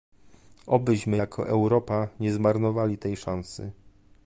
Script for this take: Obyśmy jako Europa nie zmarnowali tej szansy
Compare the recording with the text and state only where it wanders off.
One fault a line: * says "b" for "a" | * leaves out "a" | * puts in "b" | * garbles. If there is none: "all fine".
all fine